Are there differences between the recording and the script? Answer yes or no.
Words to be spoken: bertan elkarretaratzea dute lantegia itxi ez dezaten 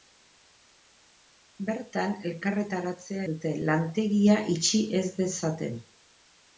no